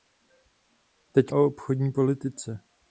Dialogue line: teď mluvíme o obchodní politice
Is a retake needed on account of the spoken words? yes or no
yes